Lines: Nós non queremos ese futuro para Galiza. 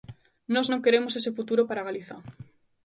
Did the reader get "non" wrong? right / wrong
right